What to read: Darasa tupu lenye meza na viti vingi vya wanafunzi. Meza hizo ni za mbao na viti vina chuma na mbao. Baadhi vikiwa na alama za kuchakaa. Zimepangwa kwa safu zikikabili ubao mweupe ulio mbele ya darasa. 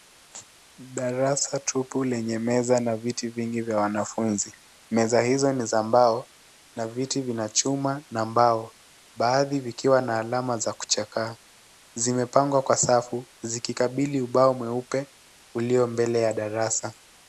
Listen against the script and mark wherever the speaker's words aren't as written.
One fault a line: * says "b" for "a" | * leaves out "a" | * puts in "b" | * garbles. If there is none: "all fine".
all fine